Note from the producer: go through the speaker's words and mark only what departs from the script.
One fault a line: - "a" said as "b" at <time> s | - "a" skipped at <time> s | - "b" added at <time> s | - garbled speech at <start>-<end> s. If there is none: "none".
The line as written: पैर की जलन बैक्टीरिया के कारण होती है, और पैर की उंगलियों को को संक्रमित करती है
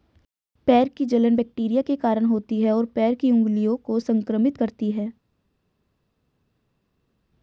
- "को" skipped at 4.0 s